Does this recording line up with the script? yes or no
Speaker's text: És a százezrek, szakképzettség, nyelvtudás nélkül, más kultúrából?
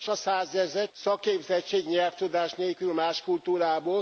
yes